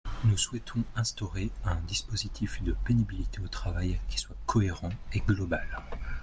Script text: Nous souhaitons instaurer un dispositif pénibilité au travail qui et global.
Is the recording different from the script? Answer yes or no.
yes